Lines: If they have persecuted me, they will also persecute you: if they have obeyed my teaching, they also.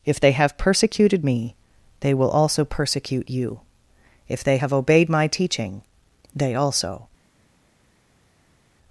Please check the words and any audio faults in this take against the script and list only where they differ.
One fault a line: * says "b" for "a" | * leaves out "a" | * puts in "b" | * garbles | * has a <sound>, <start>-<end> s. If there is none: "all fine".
all fine